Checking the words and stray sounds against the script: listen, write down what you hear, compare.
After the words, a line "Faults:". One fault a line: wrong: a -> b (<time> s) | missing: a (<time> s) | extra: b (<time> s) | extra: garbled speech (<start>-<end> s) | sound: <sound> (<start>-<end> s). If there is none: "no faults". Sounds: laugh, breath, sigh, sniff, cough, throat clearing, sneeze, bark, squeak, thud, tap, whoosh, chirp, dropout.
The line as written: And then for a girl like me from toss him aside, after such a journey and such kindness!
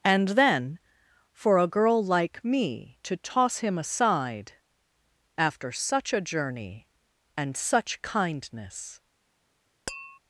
And then for a girl like me to toss him aside, after such a journey and such kindness!
Faults:
wrong: from -> to (3.0 s)
sound: tap (9.9-10.2 s)